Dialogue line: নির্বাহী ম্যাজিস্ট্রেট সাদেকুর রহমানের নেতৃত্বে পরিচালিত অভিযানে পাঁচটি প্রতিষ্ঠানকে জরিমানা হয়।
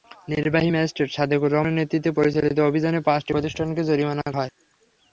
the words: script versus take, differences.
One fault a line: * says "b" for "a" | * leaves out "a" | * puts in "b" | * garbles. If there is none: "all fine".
all fine